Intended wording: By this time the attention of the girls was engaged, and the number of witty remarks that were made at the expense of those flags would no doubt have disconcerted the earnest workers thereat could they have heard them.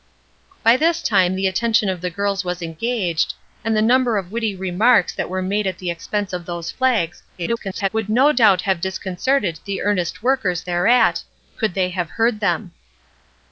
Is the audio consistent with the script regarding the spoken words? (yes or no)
no